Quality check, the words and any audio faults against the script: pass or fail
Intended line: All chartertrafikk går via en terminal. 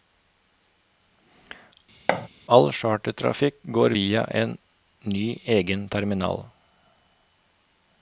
fail